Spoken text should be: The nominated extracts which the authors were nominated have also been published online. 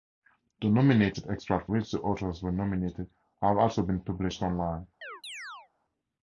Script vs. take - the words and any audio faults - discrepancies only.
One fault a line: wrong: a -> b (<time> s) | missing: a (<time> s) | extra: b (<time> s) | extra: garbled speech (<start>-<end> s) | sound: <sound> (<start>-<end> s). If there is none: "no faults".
sound: chirp (5.0-5.7 s)